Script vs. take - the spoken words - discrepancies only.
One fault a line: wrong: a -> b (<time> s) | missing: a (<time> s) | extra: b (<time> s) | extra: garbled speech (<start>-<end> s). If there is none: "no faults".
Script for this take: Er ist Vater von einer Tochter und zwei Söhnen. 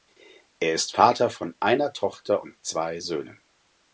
no faults